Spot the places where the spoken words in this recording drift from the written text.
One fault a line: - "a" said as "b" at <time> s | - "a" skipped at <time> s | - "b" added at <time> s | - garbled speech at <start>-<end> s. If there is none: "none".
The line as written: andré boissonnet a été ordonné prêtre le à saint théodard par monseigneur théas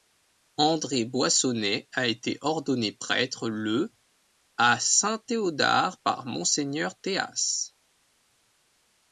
none